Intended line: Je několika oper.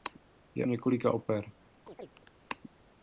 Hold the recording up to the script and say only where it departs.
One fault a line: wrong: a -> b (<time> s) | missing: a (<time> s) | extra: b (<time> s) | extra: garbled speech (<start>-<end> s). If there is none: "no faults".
no faults